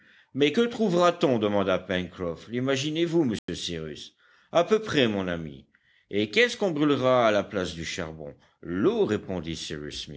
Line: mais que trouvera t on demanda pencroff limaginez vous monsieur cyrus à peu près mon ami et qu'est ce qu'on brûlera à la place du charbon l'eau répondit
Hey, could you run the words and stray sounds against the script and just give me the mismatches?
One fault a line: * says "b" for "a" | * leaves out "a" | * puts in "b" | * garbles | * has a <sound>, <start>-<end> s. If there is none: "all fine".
* has a dropout, 3.4-3.5 s